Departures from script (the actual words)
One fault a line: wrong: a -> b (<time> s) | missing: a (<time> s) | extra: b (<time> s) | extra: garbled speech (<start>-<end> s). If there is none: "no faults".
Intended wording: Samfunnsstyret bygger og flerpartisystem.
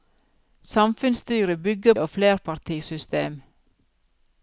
no faults